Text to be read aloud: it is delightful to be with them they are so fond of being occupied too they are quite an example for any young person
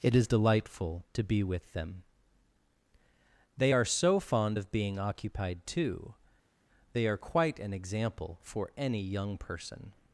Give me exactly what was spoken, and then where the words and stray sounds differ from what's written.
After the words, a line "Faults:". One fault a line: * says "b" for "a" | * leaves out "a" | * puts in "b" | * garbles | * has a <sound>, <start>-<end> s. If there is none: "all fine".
it is delightful to be with them they are so fond of being occupied too they are quite an example for any young person
Faults:
all fine